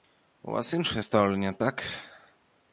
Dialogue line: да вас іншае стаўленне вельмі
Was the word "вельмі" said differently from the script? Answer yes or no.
yes